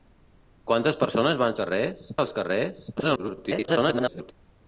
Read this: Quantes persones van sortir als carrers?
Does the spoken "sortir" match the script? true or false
false